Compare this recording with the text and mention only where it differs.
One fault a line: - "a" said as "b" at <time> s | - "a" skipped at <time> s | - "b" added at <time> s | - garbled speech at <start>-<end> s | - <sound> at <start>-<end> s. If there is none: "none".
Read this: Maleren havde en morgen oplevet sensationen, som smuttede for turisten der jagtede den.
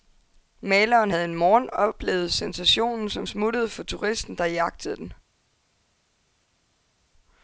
none